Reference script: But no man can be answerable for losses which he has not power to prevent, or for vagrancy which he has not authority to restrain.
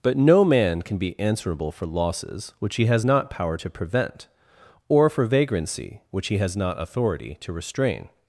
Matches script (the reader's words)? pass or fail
pass